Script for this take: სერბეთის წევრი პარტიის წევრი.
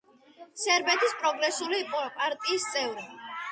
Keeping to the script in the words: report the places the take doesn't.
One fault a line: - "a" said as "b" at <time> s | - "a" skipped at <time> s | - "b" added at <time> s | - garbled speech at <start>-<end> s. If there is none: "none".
- "წევრი" said as "პროგრესული" at 1.2 s